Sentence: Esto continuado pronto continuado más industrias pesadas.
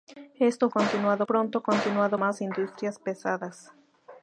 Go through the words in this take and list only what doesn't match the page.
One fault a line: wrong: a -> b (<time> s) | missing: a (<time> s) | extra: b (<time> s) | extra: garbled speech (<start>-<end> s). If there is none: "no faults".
no faults